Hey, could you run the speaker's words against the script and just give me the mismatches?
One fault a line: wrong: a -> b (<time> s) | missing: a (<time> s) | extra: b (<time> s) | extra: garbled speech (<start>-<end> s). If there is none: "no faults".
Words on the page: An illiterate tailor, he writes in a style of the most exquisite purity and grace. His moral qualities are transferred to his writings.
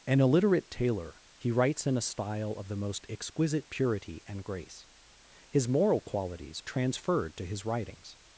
missing: are (6.6 s)